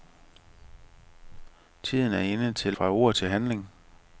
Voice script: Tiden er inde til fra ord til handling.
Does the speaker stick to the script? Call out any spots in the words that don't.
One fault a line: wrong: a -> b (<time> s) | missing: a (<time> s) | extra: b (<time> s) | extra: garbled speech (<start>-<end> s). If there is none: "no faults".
no faults